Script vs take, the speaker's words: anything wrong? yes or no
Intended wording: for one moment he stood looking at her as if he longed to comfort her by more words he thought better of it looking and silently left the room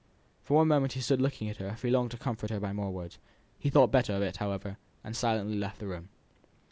yes